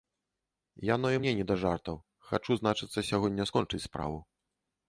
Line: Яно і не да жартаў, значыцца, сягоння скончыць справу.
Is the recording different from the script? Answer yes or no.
yes